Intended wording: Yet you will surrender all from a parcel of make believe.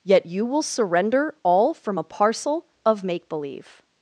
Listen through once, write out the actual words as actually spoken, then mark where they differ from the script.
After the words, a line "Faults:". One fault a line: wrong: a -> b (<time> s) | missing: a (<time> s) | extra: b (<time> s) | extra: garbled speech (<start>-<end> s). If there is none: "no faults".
Yet you will surrender all from a parcel of make believe.
Faults:
no faults